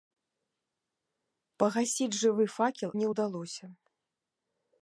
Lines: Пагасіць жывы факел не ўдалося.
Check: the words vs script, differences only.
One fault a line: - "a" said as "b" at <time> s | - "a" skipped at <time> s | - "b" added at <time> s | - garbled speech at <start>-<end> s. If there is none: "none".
none